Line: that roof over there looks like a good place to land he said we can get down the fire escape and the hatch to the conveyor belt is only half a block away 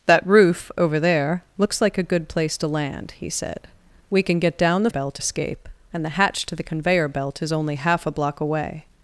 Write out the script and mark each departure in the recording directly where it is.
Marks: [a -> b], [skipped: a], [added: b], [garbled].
that roof over there looks like a good place to land he said we can get down the [fire -> belt] escape and the hatch to the conveyor belt is only half a block away